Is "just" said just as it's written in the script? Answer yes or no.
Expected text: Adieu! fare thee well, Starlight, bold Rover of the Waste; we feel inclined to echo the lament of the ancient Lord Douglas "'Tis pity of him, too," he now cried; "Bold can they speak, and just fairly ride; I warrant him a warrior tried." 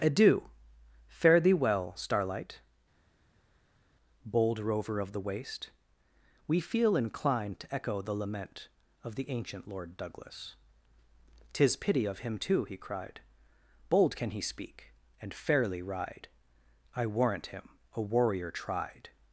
no